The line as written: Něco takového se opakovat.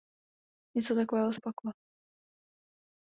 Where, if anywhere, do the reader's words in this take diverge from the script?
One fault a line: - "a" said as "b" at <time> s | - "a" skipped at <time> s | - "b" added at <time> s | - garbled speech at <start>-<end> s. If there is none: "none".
none